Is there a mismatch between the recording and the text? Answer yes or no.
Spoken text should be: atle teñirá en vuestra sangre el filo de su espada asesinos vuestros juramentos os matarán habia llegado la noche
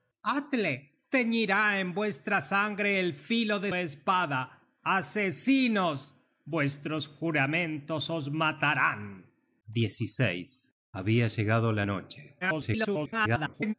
yes